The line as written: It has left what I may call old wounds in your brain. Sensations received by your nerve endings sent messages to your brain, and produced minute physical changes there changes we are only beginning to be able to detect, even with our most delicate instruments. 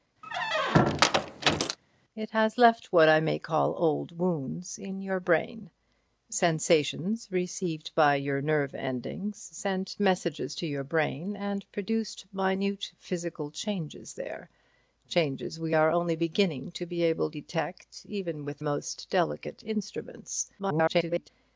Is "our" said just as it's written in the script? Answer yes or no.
no